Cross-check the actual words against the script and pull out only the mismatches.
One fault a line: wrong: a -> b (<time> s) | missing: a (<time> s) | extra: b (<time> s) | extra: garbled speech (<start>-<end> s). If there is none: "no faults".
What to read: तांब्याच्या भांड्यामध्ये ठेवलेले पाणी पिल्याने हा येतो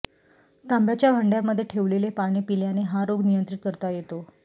extra: रोग नियंत्रित करता (3.1 s)